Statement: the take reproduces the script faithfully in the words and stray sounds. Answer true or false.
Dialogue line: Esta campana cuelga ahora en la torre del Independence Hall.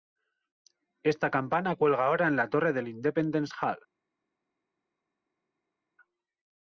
true